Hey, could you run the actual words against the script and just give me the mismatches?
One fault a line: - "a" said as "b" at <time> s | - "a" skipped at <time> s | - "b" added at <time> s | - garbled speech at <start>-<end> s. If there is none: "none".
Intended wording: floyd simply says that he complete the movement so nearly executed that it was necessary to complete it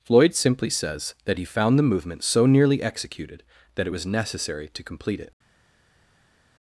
- "complete" said as "found" at 1.4 s